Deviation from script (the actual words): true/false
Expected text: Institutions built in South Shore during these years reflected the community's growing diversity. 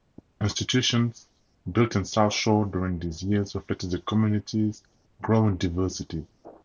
false